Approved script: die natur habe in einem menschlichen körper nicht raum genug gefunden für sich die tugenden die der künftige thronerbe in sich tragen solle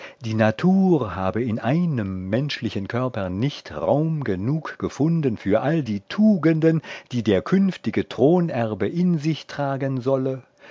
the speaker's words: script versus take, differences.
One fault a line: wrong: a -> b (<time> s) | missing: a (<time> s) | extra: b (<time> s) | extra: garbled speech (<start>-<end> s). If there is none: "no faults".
wrong: sich -> all (5.6 s)